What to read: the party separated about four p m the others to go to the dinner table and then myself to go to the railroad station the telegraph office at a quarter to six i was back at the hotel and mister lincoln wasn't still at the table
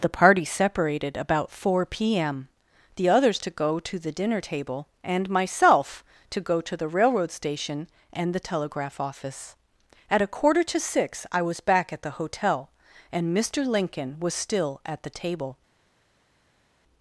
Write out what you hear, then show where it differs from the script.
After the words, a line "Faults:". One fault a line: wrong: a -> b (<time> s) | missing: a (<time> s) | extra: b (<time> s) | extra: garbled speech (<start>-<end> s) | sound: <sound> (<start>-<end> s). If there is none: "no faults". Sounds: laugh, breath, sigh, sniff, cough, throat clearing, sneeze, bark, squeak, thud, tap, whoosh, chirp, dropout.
the party separated about four p m the others to go to the dinner table and myself to go to the railroad station and the telegraph office at a quarter to six i was back at the hotel and mister lincoln was still at the table
Faults:
missing: then (5.3 s)
extra: and (8.1 s)
wrong: wasn't -> was (14.2 s)